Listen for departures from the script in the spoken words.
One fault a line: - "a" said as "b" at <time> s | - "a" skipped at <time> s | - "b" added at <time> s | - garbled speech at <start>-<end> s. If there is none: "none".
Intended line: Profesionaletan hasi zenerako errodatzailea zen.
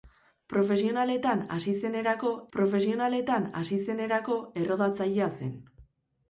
- "profesionaletan hasi zenerako" added at 2.6 s